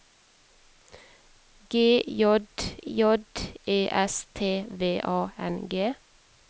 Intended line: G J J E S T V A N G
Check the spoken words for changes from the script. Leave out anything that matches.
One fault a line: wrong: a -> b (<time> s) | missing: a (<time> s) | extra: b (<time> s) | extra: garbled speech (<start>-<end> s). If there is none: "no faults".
no faults